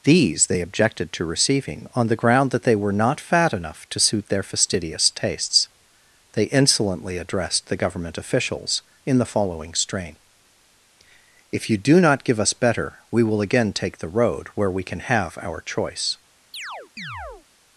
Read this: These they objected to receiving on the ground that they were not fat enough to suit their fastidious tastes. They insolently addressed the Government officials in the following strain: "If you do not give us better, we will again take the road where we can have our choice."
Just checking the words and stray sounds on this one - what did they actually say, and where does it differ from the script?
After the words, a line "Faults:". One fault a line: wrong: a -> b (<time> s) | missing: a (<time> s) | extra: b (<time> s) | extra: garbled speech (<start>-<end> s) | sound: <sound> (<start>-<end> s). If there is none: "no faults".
These they objected to receiving on the ground that they were not fat enough to suit their fastidious tastes. They insolently addressed the Government officials in the following strain: "If you do not give us better, we will again take the road where we can have our choice."
Faults:
sound: chirp (16.5-17.5 s)